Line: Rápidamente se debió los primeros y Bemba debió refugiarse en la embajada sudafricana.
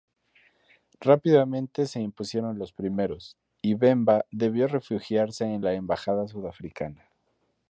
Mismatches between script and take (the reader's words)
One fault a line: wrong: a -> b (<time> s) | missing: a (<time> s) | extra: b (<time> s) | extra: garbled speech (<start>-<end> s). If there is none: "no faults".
wrong: debió -> impusieron (2.0 s)